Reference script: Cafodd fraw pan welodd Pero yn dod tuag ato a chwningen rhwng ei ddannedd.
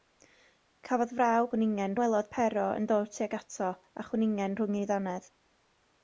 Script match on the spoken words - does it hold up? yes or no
no